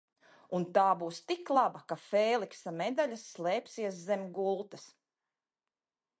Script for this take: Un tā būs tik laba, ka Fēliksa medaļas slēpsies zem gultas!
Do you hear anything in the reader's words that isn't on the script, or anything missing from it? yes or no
no